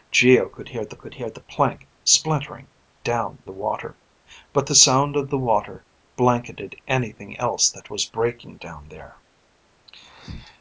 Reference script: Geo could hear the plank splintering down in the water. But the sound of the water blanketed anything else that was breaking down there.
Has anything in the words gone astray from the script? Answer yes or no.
yes